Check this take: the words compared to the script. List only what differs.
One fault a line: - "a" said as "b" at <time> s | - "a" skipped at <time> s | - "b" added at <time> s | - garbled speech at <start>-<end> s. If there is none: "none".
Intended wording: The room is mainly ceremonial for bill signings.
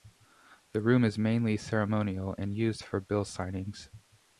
- "and used" added at 2.4 s